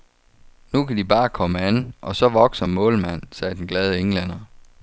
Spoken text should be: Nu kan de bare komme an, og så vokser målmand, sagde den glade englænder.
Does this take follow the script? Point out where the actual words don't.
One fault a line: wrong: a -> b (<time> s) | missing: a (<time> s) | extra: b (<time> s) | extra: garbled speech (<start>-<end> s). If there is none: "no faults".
no faults